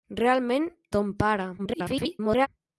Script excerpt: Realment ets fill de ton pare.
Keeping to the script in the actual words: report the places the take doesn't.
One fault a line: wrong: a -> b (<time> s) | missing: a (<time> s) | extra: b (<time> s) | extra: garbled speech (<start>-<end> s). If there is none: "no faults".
missing: ets fill de (0.7 s)
extra: garbled speech (1.6-2.5 s)